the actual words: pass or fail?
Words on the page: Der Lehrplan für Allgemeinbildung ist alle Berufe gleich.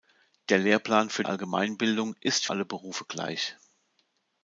pass